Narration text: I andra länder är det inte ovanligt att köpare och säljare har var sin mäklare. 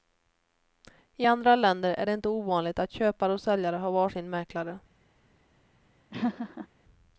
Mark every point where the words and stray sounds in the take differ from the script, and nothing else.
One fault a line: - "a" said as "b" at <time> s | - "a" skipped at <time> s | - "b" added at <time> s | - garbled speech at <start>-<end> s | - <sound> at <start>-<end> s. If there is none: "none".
- laugh at 6.1-6.7 s